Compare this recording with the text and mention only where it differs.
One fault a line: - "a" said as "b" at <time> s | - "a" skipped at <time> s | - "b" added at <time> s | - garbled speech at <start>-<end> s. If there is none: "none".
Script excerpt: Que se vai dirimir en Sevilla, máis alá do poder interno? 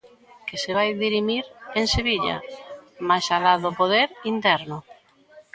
none